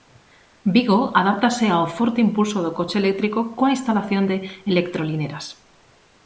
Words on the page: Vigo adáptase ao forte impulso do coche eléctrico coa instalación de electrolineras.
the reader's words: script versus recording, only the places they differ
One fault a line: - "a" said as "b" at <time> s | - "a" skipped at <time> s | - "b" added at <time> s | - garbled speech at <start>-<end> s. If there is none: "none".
none